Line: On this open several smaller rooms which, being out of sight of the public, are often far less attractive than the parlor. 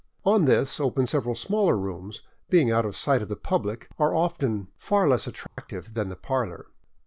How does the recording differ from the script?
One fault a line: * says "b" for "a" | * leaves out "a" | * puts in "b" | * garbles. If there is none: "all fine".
all fine